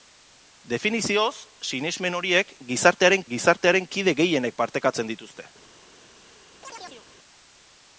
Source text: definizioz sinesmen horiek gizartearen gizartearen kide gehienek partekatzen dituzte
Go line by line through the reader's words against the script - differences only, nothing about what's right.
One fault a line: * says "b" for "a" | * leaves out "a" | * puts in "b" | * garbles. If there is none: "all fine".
all fine